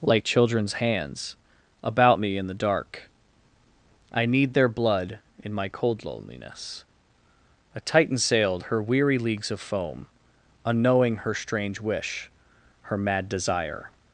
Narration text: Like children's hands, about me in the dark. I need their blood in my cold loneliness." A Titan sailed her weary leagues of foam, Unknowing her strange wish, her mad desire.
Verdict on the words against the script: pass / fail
pass